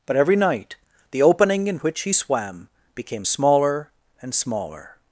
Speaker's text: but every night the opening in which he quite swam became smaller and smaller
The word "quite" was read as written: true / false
false